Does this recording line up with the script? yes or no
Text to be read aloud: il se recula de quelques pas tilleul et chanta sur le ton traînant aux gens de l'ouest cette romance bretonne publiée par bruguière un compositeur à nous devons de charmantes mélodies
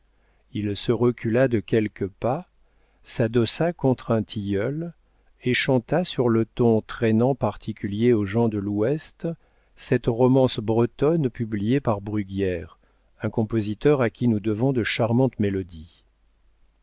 no